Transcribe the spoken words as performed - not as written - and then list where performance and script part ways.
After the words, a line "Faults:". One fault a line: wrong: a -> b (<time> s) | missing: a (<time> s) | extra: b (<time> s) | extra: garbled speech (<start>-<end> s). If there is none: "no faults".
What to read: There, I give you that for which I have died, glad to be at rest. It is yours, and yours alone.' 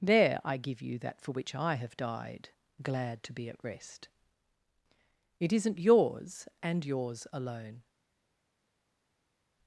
There, I give you that for which I have died, glad to be at rest. It isn't yours, and yours alone.'
Faults:
wrong: is -> isn't (5.5 s)